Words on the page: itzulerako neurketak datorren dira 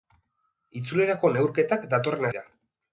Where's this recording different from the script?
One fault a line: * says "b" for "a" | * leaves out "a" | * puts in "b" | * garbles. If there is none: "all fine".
all fine